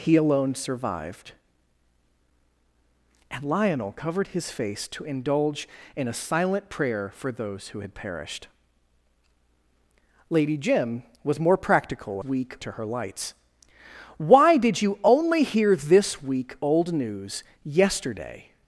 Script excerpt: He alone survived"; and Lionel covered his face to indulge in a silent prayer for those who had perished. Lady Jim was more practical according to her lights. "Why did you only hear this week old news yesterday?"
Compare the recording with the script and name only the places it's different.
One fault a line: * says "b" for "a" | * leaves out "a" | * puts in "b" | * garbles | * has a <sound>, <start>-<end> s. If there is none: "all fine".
* says "week" for "according"